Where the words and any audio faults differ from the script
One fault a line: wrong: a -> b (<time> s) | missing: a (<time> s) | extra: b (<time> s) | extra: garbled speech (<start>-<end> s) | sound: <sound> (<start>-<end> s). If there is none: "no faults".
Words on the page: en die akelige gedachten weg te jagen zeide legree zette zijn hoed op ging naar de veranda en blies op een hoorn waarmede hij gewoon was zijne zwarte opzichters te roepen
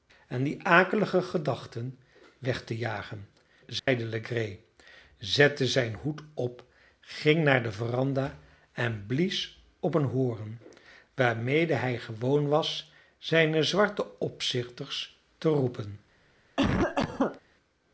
sound: dropout (3.8-3.9 s)
sound: cough (16.6-17.4 s)